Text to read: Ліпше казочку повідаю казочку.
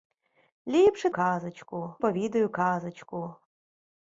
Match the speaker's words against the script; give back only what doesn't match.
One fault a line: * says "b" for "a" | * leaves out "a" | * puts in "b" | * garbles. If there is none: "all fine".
all fine